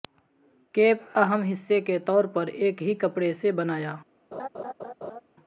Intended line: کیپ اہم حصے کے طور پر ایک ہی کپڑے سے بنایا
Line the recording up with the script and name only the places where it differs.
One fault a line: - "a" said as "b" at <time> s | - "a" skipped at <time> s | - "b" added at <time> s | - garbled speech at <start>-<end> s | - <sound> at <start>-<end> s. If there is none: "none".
- laugh at 4.3-5.2 s